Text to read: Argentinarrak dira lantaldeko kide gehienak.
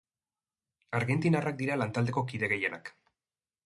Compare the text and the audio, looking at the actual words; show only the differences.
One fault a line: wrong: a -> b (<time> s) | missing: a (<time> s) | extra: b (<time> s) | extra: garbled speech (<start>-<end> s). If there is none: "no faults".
no faults